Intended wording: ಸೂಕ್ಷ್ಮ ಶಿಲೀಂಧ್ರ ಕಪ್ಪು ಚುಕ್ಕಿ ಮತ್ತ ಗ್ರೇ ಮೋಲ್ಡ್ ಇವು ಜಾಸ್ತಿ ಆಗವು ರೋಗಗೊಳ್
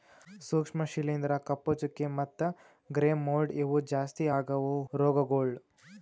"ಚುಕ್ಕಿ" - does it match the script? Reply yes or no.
yes